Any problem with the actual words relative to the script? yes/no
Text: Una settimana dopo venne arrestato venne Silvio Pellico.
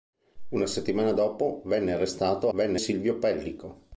no